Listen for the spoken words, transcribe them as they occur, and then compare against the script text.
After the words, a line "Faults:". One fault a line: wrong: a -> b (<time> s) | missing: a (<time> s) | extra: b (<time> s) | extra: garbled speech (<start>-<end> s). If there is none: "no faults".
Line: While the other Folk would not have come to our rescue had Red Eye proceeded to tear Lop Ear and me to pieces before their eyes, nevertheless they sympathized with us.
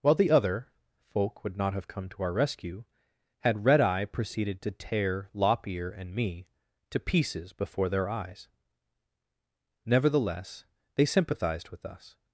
While the other Folk would not have come to our rescue had Red Eye proceeded to tear Lop Ear and me to pieces before their eyes, nevertheless they sympathized with us.
Faults:
no faults